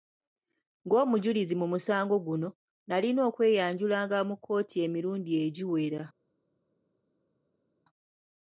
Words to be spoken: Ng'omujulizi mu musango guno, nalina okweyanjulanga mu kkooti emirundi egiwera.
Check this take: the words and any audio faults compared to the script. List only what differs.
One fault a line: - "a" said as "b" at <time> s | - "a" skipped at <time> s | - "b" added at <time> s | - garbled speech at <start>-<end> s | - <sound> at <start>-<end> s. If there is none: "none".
none